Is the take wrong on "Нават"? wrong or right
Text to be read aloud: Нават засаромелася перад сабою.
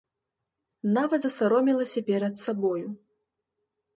right